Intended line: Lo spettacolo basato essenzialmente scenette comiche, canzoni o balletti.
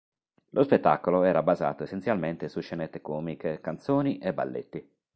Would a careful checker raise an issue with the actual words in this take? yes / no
yes